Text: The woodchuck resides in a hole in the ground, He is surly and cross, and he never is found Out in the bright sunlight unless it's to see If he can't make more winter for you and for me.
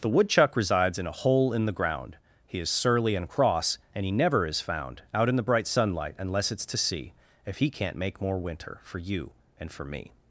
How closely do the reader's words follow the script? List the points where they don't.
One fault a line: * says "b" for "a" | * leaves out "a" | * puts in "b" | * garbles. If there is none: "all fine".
all fine